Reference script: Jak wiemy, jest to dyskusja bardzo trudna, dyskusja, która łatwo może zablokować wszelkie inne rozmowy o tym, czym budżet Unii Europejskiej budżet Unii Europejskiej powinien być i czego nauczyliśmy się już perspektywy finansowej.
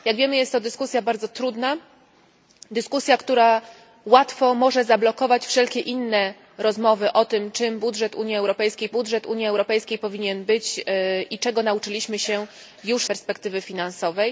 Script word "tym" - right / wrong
right